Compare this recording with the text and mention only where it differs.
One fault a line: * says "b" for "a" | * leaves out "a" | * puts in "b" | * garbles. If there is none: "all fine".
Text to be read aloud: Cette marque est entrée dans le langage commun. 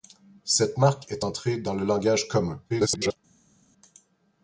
* garbles